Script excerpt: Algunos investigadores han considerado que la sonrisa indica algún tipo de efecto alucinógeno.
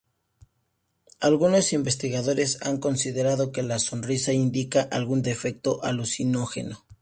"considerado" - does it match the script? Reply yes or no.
yes